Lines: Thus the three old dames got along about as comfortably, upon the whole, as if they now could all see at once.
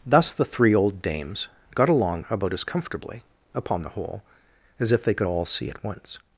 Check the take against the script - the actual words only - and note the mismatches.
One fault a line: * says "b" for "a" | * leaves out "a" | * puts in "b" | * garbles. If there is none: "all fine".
* leaves out "now"